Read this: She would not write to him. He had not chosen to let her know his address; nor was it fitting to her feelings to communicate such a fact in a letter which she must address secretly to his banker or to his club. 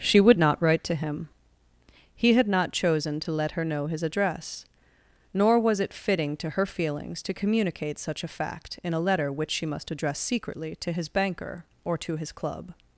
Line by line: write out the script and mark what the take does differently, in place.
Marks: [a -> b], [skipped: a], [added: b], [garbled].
She would not write to him. He had not chosen to let her know his address; nor was it fitting to her feelings to communicate such a fact in a letter which she must address secretly to his banker or to his club.